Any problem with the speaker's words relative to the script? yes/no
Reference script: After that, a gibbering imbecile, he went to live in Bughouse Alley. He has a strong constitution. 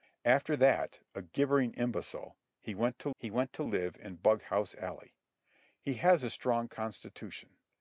yes